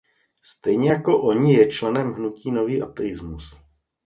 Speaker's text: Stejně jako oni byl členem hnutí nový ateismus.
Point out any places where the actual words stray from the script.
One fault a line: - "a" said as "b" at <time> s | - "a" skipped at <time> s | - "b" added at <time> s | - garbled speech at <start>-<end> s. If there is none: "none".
- "byl" said as "je" at 1.5 s